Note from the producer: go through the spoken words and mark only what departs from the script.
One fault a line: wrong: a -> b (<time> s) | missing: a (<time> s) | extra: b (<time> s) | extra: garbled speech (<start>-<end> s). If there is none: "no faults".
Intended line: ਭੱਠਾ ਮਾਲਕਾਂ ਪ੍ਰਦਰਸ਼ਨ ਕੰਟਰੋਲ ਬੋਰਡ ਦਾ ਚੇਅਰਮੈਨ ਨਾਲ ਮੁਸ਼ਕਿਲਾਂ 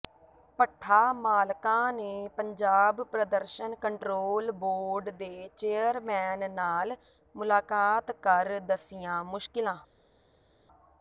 extra: ਨੇ ਪੰਜਾਬ (1.9 s)
wrong: ਦਾ -> ਦੇ (5.1 s)
extra: ਮੁਲਾਕਾਤ ਕਰ ਦੱਸੀਆਂ (7.3 s)